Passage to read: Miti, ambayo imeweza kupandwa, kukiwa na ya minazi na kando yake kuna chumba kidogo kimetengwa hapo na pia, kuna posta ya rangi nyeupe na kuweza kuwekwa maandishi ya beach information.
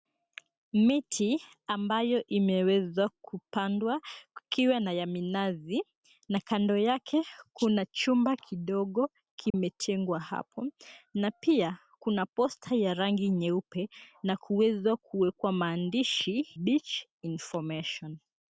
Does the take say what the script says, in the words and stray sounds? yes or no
no